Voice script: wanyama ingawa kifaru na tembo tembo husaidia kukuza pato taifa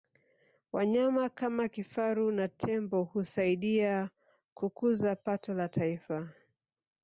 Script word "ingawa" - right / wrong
wrong